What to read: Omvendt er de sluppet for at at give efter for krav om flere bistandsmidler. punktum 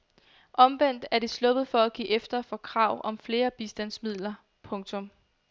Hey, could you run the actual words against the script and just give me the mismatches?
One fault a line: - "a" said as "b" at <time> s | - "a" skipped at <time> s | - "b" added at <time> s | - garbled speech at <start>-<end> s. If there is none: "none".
- "at" skipped at 1.9 s